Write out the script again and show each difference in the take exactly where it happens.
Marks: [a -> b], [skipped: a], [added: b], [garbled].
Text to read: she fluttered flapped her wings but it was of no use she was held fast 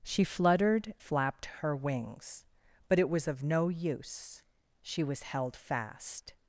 she fluttered flapped her wings but it was of no use she was held fast